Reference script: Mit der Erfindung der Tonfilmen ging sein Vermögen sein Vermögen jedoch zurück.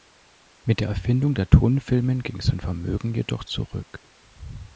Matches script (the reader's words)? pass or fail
fail